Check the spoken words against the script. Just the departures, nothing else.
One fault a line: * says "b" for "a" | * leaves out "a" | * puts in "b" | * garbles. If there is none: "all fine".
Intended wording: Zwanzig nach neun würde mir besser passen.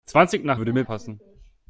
* leaves out "neun"
* leaves out "besser"